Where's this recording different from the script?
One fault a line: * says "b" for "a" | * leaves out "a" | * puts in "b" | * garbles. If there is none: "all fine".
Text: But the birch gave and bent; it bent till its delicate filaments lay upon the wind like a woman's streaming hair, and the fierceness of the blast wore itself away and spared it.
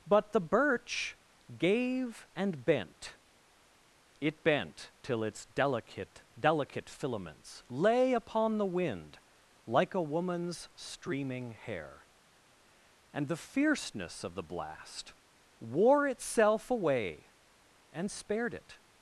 * puts in "delicate"